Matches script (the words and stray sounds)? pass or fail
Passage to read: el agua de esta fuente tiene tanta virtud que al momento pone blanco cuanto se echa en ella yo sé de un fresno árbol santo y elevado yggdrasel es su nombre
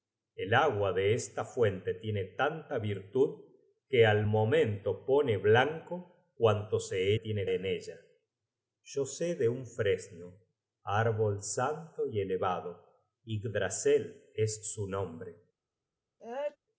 fail